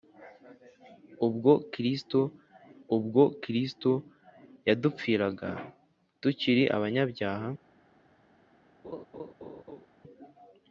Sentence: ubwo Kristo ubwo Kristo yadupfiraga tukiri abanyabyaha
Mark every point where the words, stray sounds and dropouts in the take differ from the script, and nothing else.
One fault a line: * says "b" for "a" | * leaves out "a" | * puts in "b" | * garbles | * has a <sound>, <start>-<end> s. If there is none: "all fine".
* has a laugh, 8.8-9.9 s